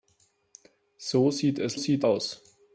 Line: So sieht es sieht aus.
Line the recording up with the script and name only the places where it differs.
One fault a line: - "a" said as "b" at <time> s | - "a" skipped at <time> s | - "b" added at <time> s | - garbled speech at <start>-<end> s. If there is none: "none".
none